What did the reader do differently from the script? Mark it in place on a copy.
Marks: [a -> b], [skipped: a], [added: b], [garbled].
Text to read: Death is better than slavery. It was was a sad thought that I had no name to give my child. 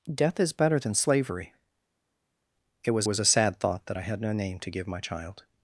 Death is better than slavery. It was was a sad thought that I had no name to give my child.